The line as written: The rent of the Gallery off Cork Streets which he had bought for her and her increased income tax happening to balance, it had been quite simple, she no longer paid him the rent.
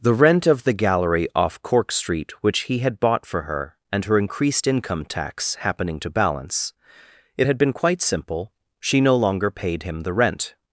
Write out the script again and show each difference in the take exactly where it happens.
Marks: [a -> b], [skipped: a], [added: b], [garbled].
The rent of the Gallery off Cork [Streets -> Street] which he had bought for her and her increased income tax happening to balance, it had been quite simple, she no longer paid him the rent.